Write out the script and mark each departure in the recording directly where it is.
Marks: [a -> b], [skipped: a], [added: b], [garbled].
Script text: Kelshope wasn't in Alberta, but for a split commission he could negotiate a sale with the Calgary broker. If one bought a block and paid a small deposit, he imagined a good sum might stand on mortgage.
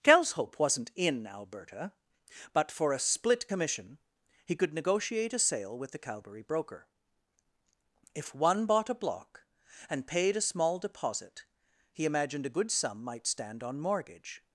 Kelshope wasn't in Alberta, but for a split commission he could negotiate a sale with the Calgary broker. If one bought a block and paid a small deposit, he imagined a good sum might stand on mortgage.